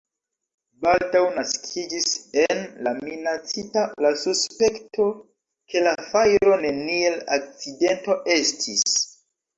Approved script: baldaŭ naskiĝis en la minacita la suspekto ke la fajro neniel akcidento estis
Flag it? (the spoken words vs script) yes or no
no